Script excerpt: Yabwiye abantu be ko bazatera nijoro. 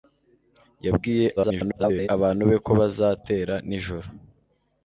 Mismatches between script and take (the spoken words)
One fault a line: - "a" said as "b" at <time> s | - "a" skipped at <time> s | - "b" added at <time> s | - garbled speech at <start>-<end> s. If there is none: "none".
- garbled speech at 1.4-2.1 s